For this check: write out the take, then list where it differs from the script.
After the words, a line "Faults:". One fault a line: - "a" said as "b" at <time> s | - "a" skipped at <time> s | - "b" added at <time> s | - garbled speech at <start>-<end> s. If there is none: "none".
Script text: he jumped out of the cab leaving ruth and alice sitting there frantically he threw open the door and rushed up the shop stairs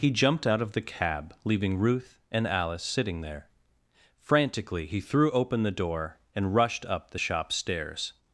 he jumped out of the cab leaving ruth and alice sitting there frantically he threw open the door and rushed up the shop stairs
Faults:
none